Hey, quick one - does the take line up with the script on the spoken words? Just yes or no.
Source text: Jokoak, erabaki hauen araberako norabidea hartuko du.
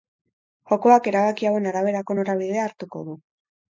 yes